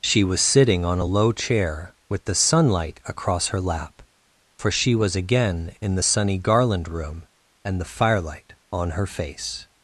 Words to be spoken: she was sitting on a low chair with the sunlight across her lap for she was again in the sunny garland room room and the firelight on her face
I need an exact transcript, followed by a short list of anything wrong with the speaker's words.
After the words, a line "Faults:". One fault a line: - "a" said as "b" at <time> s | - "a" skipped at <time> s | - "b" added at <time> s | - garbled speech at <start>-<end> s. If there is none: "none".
she was sitting on a low chair with the sunlight across her lap for she was again in the sunny garland room and the firelight on her face
Faults:
- "room" skipped at 7.2 s